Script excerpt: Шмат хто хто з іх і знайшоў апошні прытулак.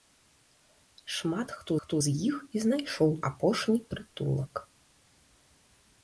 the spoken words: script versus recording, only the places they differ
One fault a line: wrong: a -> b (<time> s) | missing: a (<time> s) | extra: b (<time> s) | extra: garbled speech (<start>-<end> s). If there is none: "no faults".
no faults